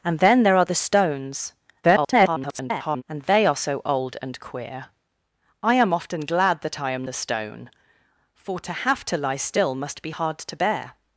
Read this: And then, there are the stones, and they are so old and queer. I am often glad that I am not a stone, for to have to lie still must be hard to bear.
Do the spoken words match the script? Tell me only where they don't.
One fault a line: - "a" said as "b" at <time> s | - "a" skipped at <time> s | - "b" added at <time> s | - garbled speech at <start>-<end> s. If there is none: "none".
- garbled speech at 1.8-3.0 s
- "not" skipped at 7.1 s